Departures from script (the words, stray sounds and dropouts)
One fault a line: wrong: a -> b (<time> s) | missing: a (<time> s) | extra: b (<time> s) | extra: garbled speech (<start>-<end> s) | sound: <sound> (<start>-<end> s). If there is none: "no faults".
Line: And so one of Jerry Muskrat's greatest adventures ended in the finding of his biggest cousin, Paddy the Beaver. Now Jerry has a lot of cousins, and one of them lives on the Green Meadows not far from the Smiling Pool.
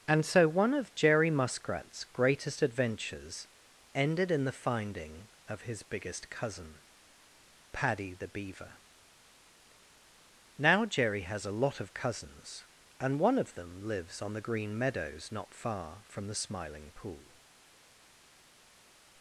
no faults